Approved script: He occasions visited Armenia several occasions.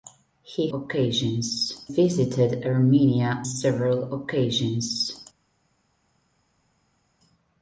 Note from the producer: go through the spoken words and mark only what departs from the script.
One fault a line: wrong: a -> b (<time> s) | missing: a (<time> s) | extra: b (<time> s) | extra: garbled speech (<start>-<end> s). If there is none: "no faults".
no faults